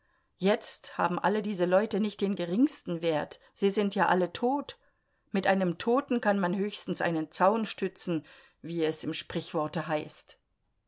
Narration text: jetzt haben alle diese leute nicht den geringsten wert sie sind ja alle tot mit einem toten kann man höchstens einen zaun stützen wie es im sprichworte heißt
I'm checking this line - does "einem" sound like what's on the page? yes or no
yes